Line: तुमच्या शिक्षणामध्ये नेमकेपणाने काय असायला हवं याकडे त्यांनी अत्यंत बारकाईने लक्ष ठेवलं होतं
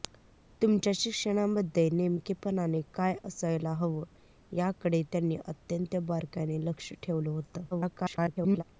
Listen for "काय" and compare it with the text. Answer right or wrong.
right